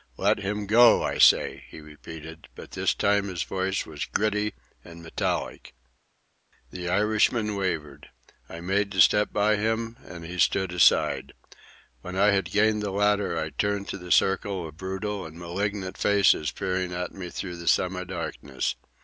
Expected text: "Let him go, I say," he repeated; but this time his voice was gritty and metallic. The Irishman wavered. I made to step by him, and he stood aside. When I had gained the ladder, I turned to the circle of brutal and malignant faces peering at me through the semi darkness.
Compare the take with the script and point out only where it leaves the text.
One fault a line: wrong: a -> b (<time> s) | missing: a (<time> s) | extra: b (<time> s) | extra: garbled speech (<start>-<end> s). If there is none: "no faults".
no faults